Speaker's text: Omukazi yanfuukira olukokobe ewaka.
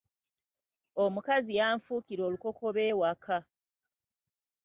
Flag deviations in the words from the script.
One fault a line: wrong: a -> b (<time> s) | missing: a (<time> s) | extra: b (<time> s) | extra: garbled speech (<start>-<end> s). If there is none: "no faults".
no faults